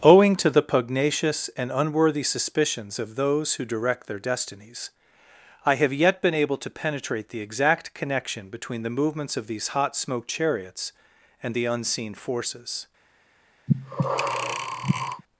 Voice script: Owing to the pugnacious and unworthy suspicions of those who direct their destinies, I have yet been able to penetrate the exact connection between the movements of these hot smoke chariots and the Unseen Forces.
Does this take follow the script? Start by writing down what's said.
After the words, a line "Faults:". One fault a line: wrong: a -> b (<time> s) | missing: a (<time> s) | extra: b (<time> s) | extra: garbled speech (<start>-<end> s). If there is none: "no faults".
Owing to the pugnacious and unworthy suspicions of those who direct their destinies, I have yet been able to penetrate the exact connection between the movements of these hot smoke chariots and the Unseen Forces.
Faults:
no faults